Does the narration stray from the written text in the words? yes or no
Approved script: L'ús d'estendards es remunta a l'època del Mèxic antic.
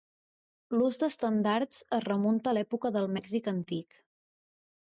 no